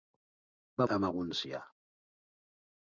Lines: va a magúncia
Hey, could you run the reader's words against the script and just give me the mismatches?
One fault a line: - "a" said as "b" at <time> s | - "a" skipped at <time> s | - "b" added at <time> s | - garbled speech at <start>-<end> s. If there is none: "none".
none